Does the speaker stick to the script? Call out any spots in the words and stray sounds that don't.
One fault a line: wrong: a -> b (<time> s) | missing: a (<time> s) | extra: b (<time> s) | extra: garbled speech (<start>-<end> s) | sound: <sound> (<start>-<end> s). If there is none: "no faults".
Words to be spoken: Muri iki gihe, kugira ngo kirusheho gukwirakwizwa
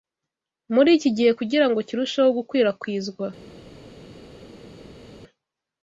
no faults